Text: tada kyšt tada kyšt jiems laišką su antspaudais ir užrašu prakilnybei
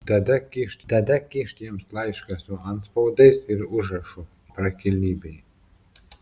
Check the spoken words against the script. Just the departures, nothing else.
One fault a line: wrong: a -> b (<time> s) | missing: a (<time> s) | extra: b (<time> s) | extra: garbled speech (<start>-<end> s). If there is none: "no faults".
no faults